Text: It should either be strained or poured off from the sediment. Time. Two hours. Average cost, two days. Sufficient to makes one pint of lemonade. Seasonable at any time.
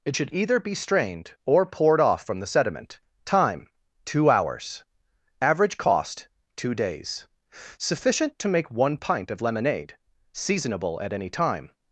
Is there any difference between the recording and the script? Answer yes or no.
yes